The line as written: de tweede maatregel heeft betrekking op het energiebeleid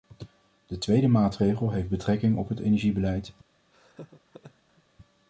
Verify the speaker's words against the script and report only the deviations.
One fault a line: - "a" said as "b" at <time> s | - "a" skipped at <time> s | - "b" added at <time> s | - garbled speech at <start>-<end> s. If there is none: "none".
none